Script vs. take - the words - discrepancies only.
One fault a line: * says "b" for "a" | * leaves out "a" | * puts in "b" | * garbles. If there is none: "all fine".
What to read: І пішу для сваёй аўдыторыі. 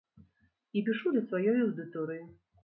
all fine